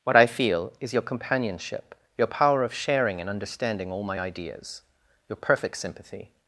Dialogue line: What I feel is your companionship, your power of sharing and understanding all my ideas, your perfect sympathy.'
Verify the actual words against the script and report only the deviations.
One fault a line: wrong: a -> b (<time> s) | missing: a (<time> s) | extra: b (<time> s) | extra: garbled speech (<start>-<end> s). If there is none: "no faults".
no faults